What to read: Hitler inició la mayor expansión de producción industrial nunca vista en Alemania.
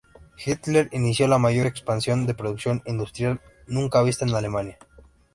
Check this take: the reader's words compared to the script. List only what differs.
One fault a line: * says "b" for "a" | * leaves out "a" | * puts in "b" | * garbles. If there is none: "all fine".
all fine